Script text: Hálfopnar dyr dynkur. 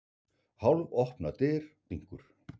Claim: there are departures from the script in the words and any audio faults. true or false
false